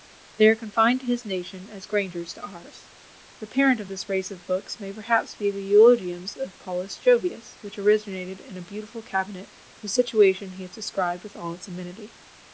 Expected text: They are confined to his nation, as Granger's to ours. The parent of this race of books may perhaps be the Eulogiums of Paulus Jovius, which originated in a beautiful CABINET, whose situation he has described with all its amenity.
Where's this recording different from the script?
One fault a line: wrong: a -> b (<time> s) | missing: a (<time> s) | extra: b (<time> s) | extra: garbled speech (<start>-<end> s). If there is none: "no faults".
no faults